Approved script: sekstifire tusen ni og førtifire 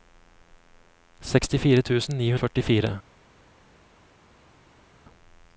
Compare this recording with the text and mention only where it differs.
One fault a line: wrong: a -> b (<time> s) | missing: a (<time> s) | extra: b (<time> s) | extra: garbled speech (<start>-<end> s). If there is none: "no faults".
no faults